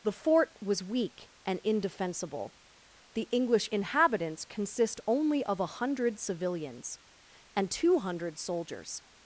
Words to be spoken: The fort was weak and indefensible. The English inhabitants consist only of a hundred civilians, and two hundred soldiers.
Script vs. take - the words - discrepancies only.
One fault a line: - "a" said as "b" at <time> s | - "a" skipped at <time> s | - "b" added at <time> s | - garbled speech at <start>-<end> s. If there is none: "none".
none